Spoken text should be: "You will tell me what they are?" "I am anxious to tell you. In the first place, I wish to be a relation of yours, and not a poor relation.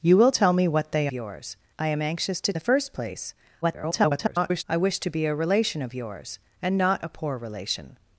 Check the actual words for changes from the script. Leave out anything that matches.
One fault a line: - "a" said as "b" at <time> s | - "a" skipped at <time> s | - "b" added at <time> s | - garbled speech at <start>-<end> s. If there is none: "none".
- "are" said as "yours" at 1.1 s
- "tell you In" skipped at 2.5 s
- garbled speech at 3.6-4.6 s